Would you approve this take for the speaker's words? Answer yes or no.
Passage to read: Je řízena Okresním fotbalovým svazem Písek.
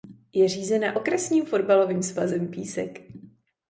yes